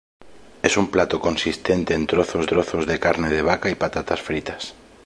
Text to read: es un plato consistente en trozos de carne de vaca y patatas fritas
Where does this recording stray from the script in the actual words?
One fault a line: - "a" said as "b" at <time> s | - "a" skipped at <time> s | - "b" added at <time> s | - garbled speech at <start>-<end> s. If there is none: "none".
- "trozos" added at 2.5 s